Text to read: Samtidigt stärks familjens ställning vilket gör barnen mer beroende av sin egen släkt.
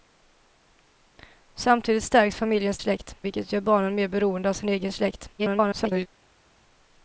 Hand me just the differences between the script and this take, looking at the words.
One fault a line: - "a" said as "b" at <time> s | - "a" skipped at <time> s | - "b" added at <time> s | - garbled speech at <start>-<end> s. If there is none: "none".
- "ställning" said as "släkt" at 2.8 s
- garbled speech at 5.4-6.1 s